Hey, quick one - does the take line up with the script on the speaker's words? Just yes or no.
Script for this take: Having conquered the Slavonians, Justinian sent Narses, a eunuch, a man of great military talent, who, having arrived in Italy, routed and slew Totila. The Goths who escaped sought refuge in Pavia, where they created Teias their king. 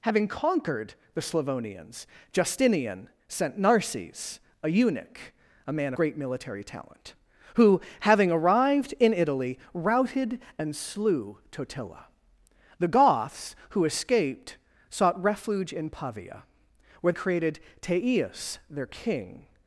no